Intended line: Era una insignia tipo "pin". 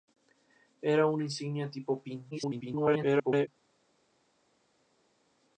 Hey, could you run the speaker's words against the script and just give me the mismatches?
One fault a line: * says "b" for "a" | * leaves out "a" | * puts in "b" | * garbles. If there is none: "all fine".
* garbles